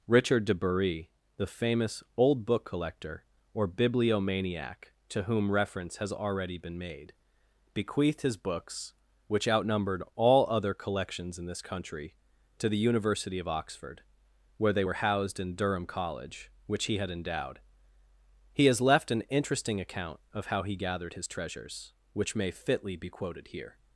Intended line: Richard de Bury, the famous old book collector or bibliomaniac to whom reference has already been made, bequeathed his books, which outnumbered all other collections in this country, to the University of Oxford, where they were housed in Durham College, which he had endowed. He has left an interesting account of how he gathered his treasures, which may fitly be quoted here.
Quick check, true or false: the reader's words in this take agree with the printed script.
true